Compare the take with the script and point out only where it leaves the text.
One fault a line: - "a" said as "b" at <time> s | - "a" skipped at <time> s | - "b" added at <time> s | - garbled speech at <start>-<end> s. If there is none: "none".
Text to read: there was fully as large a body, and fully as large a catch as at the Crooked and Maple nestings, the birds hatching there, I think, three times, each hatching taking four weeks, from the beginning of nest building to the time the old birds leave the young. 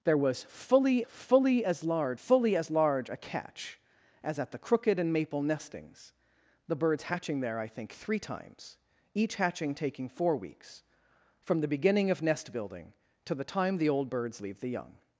- "fully" added at 1.0 s
- "a body and" skipped at 2.2 s